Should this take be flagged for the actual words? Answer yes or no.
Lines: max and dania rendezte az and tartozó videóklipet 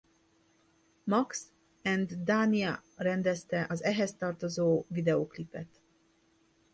yes